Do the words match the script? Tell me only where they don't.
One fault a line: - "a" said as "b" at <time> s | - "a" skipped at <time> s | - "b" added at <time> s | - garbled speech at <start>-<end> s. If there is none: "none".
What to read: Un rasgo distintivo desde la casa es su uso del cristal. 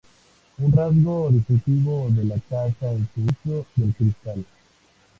- "desde" said as "de" at 2.1 s